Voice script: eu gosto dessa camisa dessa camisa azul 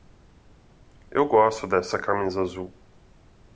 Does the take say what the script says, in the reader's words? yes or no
no